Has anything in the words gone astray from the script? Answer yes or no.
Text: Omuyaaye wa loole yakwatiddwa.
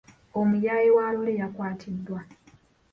no